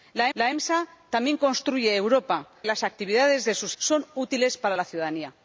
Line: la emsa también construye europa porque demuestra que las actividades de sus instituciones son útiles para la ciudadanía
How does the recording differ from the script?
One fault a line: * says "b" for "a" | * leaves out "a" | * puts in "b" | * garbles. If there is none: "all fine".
* puts in "la"
* leaves out "porque demuestra que"
* leaves out "instituciones"